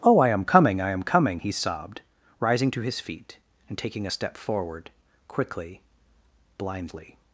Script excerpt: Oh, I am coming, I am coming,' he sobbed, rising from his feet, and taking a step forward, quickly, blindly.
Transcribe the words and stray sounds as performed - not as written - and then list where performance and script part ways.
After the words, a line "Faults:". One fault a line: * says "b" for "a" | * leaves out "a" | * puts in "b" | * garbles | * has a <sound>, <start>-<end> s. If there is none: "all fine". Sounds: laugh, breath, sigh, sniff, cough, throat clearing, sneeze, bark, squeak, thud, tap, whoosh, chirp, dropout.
Oh, I am coming, I am coming,' he sobbed, rising to his feet, and taking a step forward, quickly, blindly.
Faults:
* says "to" for "from"